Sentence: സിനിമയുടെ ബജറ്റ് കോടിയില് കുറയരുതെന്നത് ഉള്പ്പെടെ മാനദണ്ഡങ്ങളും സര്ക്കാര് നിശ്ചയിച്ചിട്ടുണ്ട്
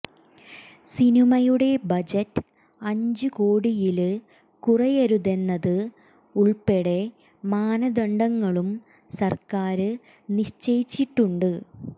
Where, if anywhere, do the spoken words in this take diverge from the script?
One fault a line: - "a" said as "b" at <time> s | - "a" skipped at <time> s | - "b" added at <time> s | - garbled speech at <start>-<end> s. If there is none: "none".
- "അഞ്ച്" added at 2.8 s